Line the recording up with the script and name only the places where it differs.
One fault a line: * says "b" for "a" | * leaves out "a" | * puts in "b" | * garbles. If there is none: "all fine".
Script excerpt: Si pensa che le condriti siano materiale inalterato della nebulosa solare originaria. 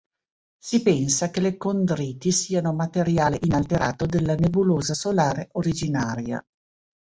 all fine